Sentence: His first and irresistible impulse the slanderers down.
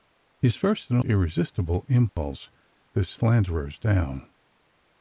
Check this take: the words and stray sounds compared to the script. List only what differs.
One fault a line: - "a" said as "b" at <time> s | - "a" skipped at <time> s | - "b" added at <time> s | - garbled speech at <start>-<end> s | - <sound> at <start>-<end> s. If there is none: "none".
- dropout at 2.1-2.2 s